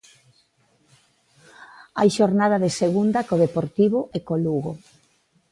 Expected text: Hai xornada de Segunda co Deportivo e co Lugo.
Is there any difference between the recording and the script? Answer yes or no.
no